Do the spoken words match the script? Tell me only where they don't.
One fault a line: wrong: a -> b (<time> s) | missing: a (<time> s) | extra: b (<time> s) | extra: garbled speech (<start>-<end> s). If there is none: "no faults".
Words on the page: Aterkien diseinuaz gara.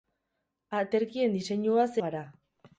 no faults